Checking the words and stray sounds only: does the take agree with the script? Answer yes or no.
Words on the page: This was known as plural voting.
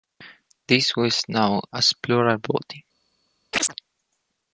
no